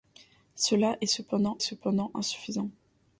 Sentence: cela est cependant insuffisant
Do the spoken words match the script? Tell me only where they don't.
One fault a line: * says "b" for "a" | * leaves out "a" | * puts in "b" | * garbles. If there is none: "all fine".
* puts in "cependant"